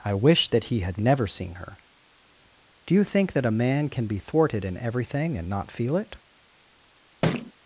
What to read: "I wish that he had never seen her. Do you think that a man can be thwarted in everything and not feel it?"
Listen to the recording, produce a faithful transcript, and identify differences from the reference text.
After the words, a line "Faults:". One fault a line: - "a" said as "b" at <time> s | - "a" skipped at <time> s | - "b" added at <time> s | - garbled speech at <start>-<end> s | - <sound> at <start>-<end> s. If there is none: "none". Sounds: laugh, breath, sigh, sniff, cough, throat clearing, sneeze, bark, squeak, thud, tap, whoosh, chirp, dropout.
"I wish that he had never seen her. Do you think that a man can be thwarted in everything and not feel it?"
Faults:
- thud at 7.2-7.5 s